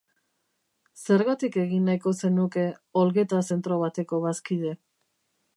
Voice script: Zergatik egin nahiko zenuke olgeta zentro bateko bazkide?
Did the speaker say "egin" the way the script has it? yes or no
yes